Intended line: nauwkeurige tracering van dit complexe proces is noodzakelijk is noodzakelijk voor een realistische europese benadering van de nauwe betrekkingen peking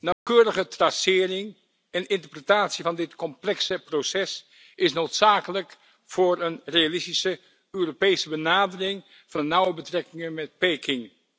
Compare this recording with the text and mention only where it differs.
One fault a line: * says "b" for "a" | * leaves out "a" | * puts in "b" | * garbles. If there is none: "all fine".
* puts in "en interpretatie"
* leaves out "is noodzakelijk"
* puts in "met"